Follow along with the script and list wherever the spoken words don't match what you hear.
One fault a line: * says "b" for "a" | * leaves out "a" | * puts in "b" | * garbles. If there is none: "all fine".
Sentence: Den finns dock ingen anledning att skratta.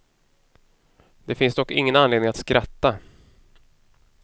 * says "Det" for "Den"